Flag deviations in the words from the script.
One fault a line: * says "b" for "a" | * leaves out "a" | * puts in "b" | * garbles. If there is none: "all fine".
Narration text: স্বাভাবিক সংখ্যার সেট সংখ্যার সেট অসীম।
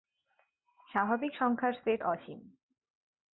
* leaves out "সংখ্যার সেট"